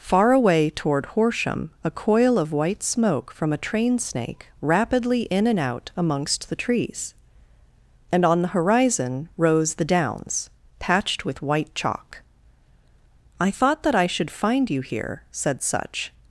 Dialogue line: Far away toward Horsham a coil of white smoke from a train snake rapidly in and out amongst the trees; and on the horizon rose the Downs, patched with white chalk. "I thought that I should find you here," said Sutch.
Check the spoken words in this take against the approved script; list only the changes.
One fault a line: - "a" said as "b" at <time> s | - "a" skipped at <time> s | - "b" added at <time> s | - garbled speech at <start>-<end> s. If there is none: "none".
none